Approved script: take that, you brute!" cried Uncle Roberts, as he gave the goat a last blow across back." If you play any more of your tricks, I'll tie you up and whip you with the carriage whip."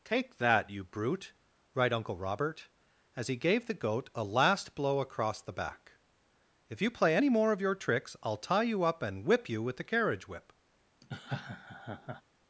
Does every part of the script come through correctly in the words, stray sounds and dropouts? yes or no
no